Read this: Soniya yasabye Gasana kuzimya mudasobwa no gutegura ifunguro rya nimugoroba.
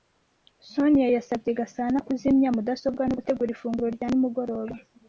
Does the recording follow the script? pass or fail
pass